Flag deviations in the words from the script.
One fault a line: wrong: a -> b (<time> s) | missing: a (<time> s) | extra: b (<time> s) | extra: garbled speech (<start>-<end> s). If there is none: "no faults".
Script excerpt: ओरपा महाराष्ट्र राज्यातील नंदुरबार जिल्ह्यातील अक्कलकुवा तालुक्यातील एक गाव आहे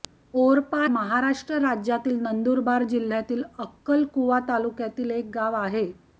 no faults